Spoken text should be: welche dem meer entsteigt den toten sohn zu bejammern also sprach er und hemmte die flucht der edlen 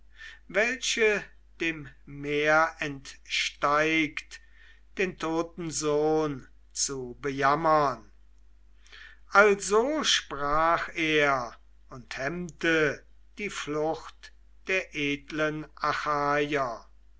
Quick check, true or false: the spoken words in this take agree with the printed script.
true